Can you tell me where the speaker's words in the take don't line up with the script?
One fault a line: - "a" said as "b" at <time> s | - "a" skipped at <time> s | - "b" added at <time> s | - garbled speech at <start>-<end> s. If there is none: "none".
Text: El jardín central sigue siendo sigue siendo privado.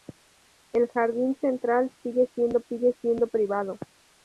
none